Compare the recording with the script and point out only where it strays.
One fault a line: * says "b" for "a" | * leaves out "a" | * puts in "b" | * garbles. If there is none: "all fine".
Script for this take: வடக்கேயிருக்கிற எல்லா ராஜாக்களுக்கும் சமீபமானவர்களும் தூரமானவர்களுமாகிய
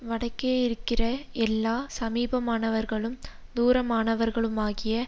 * leaves out "ராஜாக்களுக்கும்"